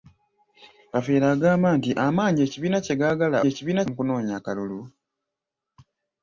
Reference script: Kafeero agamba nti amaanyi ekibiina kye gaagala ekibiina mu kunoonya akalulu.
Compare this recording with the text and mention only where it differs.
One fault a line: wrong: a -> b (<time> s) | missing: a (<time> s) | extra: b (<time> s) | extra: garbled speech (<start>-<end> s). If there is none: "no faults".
no faults